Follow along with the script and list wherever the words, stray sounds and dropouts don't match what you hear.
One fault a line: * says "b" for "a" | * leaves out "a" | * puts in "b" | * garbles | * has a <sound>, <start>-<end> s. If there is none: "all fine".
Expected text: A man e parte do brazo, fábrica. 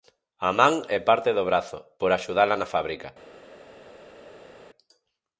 * puts in "por axudala na"